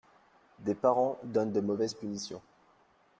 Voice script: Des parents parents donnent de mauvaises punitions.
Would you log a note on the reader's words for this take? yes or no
yes